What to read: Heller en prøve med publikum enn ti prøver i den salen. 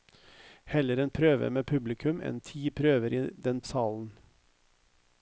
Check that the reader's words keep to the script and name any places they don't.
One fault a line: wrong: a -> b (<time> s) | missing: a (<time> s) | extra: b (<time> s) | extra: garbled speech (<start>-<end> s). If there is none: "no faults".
no faults